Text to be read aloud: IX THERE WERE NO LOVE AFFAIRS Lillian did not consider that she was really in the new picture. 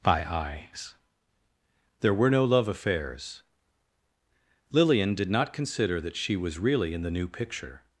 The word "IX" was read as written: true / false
false